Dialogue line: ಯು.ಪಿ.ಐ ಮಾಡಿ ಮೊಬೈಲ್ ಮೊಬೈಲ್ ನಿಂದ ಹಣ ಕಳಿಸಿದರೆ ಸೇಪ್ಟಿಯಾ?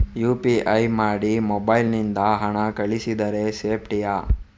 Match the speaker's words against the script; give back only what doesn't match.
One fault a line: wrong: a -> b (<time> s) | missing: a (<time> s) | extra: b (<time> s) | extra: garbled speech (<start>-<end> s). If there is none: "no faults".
missing: ಮೊಬೈಲ್ (1.9 s)